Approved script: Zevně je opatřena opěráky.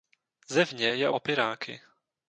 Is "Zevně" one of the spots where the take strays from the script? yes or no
no